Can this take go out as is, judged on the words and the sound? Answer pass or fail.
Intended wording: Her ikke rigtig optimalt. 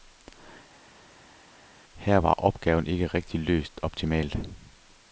fail